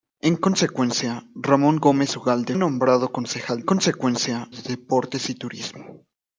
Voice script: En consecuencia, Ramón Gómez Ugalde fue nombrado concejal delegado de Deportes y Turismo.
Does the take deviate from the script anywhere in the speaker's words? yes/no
yes